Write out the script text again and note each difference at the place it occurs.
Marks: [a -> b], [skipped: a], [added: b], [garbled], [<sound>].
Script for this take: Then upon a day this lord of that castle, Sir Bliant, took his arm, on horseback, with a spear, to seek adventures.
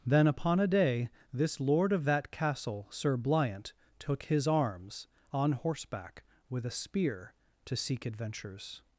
Then upon a day this lord of that castle, Sir Bliant, took his [arm, -> arms] on horseback, with a spear, to seek adventures.